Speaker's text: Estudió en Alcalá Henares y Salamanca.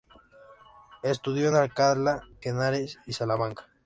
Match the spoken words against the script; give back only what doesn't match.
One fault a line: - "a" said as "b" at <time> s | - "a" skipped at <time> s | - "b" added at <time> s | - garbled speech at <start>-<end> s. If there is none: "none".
none